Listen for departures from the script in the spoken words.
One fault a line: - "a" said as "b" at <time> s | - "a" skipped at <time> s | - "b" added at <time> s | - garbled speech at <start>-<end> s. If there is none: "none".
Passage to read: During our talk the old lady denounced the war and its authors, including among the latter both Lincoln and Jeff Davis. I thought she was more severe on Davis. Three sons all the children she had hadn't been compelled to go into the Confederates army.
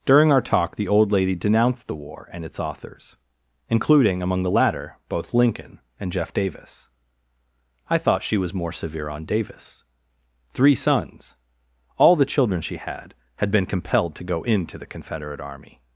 - "hadn't" said as "had" at 13.3 s
- "Confederates" said as "Confederate" at 14.9 s